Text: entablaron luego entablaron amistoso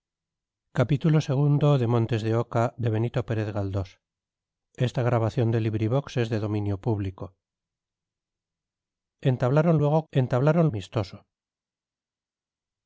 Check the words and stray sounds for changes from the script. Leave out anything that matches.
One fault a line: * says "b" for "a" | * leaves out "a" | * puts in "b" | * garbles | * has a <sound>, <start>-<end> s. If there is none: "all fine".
all fine